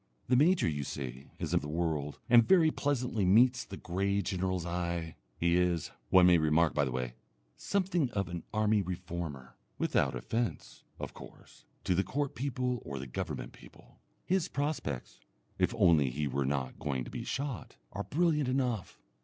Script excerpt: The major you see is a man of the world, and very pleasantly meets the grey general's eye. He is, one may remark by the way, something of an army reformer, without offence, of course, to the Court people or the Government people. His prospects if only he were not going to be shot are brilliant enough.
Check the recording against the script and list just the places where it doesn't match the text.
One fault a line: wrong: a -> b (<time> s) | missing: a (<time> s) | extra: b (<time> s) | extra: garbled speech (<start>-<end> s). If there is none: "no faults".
missing: man (1.6 s)